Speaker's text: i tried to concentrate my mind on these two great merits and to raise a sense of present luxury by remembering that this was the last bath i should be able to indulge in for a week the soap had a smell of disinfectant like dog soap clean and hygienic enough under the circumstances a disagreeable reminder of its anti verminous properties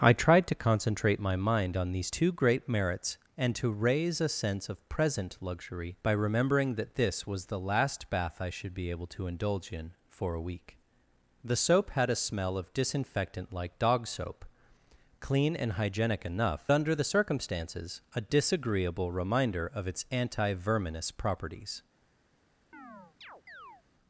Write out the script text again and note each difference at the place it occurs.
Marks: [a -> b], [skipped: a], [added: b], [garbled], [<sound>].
i tried to concentrate my mind on these two great merits and to raise a sense of present luxury by remembering that this was the last bath i should be able to indulge in for a week the soap had a smell of disinfectant like dog soap clean and hygienic enough under the circumstances a disagreeable reminder of its anti verminous properties [chirp]